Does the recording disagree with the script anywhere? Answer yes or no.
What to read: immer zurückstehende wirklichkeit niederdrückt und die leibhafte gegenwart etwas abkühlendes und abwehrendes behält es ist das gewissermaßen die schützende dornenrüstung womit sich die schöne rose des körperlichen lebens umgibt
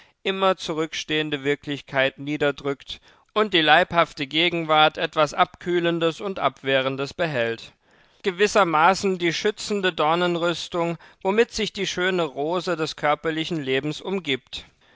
yes